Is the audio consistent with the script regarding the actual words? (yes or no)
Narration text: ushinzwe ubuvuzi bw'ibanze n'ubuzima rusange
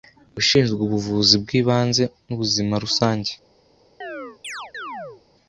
yes